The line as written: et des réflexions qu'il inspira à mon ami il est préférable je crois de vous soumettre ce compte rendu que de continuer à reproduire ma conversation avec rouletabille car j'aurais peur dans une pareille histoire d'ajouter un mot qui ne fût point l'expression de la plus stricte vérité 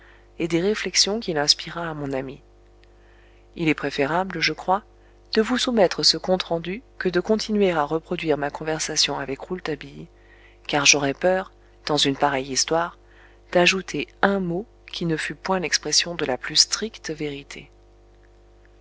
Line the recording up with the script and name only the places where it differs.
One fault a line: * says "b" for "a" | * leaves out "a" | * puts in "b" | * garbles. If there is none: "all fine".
all fine